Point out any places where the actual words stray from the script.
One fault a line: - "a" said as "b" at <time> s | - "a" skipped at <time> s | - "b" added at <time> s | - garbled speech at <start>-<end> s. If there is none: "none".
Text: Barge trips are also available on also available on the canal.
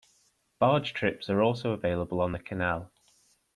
- "also available on" skipped at 2.3 s